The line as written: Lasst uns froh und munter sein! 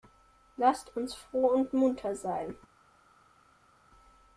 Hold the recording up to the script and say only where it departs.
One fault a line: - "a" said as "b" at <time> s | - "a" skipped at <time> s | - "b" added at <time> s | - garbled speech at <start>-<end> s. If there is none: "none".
none